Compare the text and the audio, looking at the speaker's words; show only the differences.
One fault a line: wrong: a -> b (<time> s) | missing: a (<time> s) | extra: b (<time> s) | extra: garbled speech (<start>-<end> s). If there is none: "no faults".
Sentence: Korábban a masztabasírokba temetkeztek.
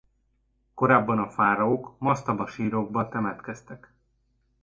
extra: fáraók (1.3 s)